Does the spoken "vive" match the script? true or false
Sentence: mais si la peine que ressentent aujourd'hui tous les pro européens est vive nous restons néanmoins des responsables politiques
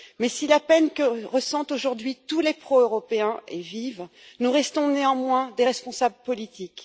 true